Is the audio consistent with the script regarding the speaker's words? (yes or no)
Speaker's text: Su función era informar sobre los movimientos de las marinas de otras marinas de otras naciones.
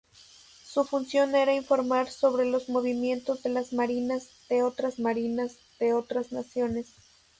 yes